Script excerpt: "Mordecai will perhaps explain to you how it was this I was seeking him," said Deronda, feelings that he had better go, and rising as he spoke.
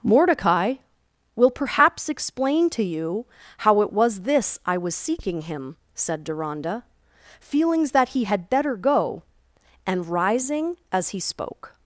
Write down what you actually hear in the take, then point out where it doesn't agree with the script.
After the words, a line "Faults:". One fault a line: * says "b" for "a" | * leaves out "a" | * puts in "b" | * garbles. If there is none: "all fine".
"Mordecai will perhaps explain to you how it was this I was seeking him," said Deronda, feelings that he had better go, and rising as he spoke.
Faults:
all fine